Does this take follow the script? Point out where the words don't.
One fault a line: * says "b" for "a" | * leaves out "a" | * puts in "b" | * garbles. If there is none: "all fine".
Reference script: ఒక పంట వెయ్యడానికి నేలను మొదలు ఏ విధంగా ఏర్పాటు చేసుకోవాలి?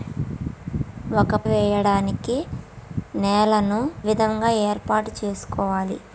* leaves out "పంట"
* leaves out "మొదలు ఏ"